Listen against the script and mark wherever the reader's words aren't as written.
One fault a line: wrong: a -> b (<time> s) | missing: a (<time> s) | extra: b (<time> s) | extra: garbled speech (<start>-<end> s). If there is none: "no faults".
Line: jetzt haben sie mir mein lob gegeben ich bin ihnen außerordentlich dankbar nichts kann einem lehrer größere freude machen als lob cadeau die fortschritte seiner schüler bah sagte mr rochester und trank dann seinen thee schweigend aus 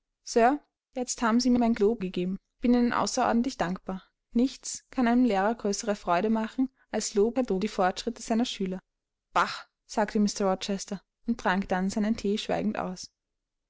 no faults